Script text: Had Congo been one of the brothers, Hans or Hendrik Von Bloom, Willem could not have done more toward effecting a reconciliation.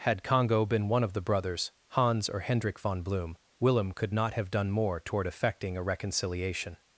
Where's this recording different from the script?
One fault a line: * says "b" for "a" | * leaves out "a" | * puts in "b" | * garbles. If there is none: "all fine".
all fine